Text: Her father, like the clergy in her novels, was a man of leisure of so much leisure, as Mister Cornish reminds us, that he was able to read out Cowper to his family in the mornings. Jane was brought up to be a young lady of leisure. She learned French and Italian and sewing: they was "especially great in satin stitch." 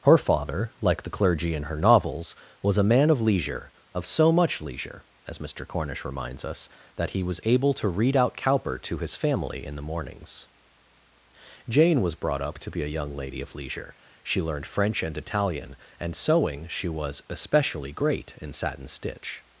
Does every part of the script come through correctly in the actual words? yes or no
no